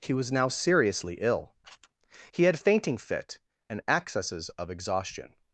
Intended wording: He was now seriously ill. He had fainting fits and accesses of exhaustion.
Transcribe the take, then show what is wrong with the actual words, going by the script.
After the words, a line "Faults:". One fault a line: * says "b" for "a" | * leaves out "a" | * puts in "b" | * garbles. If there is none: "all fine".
He was now seriously ill. He had fainting fit and accesses of exhaustion.
Faults:
* says "fit" for "fits"